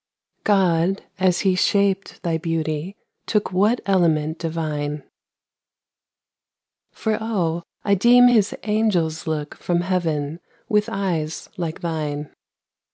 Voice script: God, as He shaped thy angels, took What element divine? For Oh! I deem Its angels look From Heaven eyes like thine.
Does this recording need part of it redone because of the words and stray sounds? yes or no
yes